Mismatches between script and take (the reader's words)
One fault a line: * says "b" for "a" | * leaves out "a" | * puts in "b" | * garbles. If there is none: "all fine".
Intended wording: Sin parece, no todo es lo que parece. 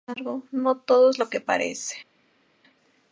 * says "embargo" for "parece"